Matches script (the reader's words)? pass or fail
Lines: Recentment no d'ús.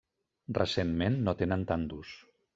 fail